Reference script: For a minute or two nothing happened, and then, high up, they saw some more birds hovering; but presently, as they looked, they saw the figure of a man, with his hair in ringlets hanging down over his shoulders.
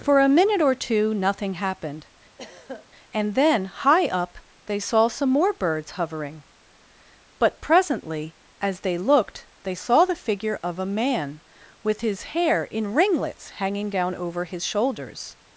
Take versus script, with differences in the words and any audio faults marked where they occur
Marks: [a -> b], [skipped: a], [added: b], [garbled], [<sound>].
For a minute or two nothing happened, [throat clearing] and then, high up, they saw some more birds hovering; but presently, as they looked, they saw the figure of a man, with his hair in ringlets hanging down over his shoulders.